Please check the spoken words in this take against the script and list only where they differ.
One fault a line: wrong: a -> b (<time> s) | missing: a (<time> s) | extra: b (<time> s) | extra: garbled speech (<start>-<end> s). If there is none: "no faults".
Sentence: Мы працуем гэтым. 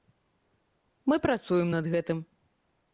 extra: над (1.8 s)